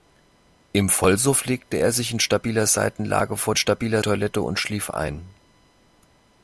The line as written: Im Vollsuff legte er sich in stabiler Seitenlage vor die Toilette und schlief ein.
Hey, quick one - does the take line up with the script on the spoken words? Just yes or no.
no